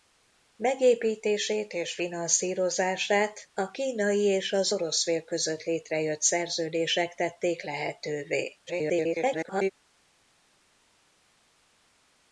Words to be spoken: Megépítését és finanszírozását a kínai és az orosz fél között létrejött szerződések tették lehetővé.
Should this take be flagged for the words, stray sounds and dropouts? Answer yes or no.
yes